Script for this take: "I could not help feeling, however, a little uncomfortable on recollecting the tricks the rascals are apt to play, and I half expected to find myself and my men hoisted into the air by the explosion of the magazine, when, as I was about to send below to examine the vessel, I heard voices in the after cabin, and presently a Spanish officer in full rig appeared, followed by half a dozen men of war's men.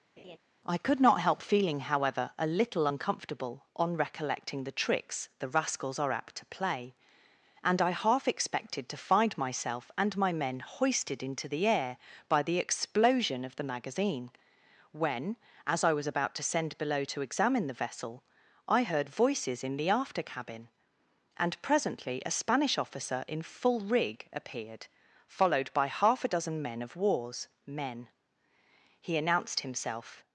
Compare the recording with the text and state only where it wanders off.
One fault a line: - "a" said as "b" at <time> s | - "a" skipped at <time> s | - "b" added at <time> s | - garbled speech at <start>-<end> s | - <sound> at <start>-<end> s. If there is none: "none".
- laugh at 0.2-0.4 s
- "He announced himself" added at 29.0 s